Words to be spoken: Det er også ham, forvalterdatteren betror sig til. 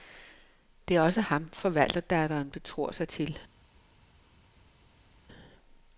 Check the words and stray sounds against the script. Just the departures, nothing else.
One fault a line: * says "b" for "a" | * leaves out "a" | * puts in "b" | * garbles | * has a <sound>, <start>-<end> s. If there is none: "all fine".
all fine